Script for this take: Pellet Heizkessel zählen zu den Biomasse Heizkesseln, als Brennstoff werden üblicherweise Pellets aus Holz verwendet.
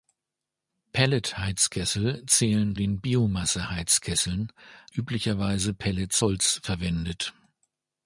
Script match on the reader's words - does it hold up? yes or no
no